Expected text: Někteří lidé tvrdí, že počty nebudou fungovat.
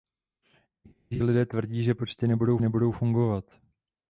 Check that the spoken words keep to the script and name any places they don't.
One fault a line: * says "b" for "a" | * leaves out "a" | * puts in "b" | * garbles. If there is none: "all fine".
* puts in "nebudou"